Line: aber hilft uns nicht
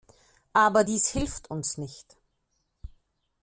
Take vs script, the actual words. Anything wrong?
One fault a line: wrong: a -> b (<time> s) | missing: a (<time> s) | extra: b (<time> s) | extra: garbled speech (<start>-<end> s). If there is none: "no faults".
extra: dies (0.8 s)